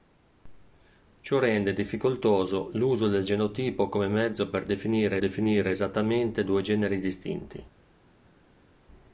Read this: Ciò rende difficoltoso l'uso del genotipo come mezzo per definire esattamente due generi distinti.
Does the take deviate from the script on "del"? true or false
false